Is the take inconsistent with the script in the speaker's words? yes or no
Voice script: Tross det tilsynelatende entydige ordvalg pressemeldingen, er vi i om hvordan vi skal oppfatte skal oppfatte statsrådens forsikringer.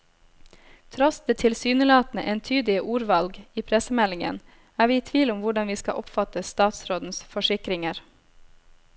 yes